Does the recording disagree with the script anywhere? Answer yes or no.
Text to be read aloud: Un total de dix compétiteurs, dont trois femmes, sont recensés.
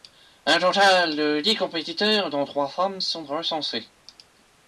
no